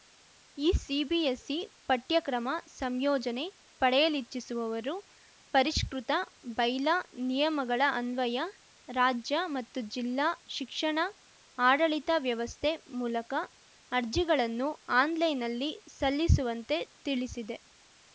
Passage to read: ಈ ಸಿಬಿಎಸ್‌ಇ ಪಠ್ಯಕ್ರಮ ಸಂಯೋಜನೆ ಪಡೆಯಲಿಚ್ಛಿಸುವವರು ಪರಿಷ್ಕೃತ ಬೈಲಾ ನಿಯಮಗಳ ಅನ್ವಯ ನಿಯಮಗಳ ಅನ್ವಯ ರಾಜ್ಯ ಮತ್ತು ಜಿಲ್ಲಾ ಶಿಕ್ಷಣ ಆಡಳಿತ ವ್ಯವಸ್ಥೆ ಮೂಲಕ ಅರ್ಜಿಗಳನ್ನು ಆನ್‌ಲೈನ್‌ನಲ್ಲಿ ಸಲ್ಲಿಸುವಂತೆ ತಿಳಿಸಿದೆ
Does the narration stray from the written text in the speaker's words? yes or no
yes